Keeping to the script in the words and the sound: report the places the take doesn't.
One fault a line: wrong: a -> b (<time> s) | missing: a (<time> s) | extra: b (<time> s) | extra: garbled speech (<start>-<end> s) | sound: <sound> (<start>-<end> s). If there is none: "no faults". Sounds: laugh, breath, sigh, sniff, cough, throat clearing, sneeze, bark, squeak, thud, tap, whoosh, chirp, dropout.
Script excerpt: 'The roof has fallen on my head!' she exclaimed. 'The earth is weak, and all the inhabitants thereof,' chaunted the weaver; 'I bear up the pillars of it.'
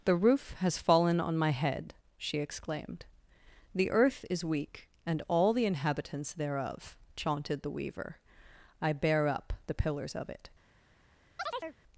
sound: chirp (11.4-11.8 s)